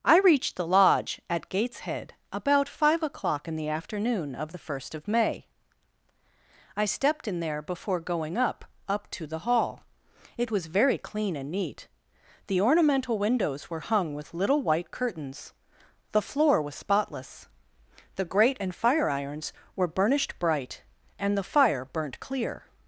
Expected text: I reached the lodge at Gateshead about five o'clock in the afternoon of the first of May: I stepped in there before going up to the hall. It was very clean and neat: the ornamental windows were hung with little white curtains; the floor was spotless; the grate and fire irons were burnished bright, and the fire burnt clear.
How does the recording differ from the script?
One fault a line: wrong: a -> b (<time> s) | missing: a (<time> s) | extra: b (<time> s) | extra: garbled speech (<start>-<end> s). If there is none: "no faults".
extra: up (8.9 s)